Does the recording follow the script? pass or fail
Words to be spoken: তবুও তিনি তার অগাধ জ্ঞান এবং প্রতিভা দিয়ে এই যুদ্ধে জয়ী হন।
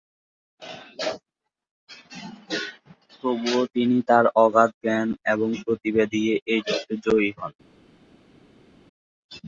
pass